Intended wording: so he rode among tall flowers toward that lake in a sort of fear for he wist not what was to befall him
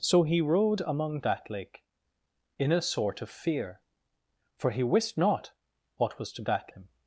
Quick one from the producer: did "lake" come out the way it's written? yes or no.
yes